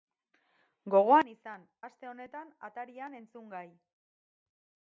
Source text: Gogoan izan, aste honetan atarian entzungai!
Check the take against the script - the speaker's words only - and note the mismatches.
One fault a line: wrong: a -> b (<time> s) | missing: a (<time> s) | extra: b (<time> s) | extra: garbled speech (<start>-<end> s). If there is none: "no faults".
no faults